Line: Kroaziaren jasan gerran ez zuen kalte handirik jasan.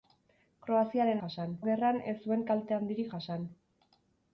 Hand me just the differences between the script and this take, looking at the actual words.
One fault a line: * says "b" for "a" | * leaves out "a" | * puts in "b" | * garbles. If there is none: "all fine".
all fine